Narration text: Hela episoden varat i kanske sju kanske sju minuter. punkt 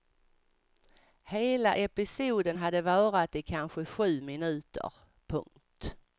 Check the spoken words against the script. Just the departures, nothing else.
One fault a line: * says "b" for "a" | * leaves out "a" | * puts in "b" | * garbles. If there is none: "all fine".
* puts in "hade"
* leaves out "kanske sju"